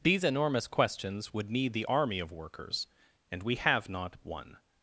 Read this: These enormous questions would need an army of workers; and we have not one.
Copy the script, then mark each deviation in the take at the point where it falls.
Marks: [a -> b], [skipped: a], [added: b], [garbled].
These enormous questions would need [an -> the] army of workers; and we have not one.